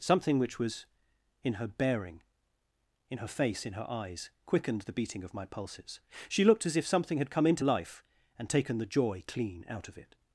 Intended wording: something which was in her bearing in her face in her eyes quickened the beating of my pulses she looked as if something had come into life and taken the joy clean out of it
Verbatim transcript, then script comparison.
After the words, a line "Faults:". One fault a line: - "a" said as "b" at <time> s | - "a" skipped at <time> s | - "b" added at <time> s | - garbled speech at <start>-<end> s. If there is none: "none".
something which was in her bearing in her face in her eyes quickened the beating of my pulses she looked as if something had come into life and taken the joy clean out of it
Faults:
none